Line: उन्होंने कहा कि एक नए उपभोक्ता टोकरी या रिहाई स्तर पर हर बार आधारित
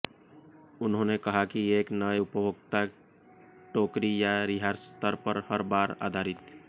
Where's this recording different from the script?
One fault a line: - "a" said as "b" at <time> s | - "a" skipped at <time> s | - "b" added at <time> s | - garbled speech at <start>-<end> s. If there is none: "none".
none